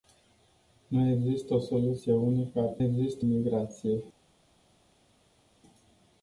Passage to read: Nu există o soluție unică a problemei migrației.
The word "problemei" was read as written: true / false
false